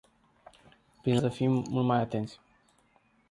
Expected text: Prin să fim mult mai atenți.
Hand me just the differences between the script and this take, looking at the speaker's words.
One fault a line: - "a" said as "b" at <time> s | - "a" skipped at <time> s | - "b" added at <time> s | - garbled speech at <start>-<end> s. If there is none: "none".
none